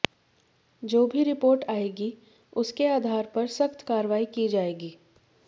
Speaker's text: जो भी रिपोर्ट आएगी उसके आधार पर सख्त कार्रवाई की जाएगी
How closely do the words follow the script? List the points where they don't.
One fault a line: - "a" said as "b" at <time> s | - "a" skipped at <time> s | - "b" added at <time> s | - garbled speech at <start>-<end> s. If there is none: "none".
none